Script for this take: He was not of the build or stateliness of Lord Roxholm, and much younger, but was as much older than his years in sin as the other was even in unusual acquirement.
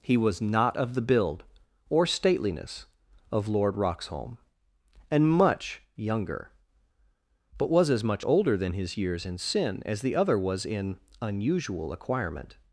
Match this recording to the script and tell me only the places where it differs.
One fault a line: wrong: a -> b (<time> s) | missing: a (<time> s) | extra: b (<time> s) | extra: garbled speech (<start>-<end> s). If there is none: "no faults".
missing: even (10.6 s)